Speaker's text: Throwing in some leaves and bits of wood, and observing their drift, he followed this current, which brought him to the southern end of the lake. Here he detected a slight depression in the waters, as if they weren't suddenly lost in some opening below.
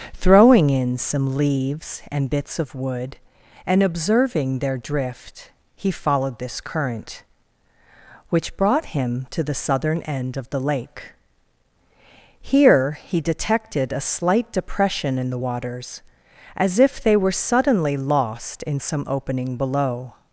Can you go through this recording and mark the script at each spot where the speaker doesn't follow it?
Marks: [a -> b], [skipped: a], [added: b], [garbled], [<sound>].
Throwing in some leaves and bits of wood, and observing their drift, he followed this current, which brought him to the southern end of the lake. Here he detected a slight depression in the waters, as if they [weren't -> were] suddenly lost in some opening below.